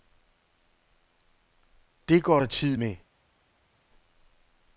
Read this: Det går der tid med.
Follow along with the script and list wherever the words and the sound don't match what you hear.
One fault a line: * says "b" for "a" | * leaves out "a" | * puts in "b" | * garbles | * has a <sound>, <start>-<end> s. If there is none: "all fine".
all fine